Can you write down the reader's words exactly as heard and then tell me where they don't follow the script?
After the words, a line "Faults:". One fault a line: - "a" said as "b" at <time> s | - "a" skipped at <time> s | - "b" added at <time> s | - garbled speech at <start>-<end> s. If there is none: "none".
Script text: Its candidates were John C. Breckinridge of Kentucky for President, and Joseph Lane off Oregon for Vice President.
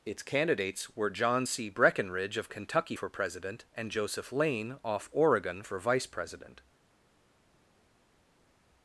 Its candidates were John C. Breckinridge of Kentucky for President, and Joseph Lane off Oregon for Vice President.
Faults:
none